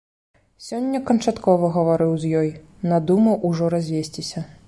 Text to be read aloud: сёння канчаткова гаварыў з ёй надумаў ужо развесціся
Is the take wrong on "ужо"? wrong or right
right